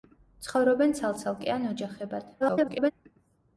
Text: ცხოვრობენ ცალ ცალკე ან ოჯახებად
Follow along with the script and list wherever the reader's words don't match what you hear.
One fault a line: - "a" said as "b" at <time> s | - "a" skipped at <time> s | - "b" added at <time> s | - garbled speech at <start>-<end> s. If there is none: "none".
- garbled speech at 2.4-2.9 s